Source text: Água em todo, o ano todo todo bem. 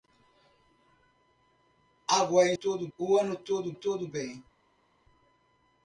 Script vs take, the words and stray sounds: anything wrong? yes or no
no